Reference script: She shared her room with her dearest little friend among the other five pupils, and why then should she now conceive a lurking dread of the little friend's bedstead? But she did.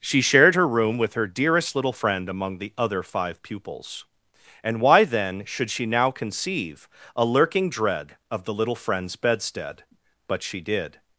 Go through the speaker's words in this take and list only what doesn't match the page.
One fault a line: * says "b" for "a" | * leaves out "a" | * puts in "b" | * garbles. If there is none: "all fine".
all fine